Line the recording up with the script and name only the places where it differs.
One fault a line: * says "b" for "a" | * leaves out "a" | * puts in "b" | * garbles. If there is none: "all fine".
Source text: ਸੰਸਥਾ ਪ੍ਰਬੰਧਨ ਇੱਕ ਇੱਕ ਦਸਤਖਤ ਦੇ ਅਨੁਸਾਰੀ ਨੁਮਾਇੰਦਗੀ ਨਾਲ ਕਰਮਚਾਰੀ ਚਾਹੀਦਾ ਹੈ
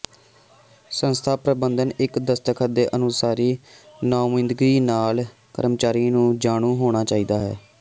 * leaves out "ਇੱਕ"
* puts in "ਨੂੰ ਜਾਣੂ ਹੋਣਾ"